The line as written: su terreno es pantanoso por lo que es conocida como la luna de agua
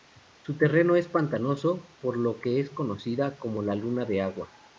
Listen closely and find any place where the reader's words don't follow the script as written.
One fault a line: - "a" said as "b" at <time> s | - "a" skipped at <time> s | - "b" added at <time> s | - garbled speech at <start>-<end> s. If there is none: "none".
none